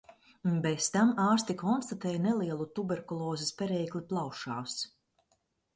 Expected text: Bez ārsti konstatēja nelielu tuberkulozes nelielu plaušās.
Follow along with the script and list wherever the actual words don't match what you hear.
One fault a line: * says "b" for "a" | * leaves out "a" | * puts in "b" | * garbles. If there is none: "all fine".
* puts in "tam"
* says "perēkli" for "nelielu"